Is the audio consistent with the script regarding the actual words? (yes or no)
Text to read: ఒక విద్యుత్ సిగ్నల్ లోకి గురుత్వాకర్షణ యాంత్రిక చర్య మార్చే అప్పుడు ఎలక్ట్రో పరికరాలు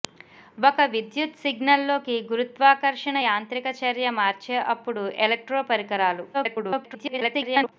no